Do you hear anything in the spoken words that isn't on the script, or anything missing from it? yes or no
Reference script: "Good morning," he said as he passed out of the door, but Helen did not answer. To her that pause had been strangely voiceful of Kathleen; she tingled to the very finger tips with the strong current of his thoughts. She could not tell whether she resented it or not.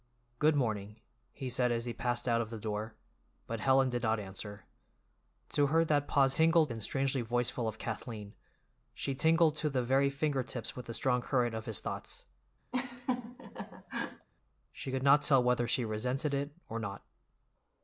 yes